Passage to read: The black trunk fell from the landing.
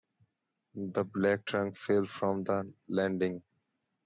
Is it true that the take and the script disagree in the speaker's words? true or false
false